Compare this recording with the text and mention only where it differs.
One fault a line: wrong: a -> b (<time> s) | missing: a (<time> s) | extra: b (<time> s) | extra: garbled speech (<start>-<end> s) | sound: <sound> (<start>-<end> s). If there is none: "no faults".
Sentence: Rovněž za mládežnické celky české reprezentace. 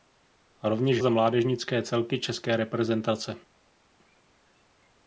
no faults